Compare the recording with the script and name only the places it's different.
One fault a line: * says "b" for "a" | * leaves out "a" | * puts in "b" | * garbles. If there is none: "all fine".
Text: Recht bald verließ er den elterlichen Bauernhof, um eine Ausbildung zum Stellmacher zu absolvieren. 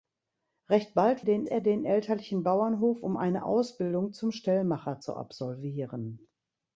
* says "den" for "verließ"